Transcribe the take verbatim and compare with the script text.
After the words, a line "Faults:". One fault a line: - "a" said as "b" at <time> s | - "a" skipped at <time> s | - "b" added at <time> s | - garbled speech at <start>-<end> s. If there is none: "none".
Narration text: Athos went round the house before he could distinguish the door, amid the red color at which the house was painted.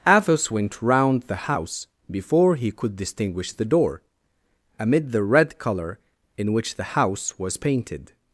Athos went round the house before he could distinguish the door, amid the red color in which the house was painted.
Faults:
- "at" said as "in" at 6.4 s